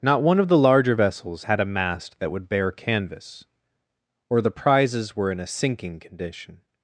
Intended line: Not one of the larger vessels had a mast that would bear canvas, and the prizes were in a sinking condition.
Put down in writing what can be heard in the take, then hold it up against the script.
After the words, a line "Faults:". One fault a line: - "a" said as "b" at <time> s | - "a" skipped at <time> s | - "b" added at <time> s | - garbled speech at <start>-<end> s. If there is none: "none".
Not one of the larger vessels had a mast that would bear canvas, or the prizes were in a sinking condition.
Faults:
- "and" said as "or" at 4.3 s